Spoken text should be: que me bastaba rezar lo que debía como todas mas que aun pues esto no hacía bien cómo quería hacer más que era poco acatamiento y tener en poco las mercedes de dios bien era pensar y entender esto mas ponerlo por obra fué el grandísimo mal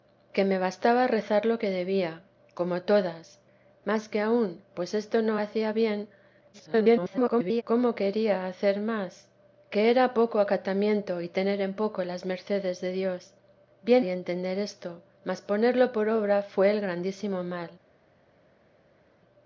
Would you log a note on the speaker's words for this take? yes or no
yes